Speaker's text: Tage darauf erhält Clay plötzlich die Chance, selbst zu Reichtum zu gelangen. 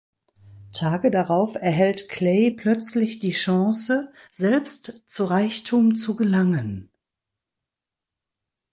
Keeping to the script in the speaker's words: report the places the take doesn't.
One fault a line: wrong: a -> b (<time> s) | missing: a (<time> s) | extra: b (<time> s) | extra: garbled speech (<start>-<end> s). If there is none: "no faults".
no faults